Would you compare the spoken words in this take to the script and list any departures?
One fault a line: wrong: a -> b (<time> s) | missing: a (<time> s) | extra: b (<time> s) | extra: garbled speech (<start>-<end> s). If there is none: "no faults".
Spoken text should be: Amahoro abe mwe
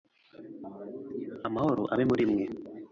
extra: muri (2.1 s)